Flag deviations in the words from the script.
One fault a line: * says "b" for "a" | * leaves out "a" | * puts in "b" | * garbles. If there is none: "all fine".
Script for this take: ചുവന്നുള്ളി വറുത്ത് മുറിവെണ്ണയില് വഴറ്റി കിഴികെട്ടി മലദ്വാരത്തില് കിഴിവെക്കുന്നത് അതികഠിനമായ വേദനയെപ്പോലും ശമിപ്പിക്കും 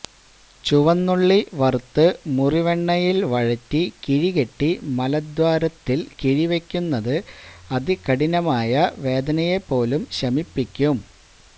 all fine